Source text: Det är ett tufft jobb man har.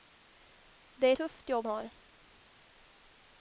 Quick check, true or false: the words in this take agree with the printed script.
false